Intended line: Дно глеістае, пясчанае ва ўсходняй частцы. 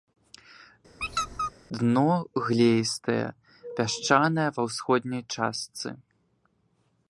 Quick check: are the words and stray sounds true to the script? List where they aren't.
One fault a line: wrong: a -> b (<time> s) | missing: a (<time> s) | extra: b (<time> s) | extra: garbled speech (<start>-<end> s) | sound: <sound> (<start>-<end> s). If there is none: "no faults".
sound: squeak (1.0-1.5 s)